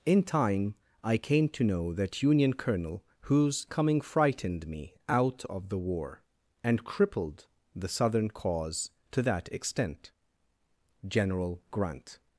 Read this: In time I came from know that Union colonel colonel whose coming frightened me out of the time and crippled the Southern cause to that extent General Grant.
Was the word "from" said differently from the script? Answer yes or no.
yes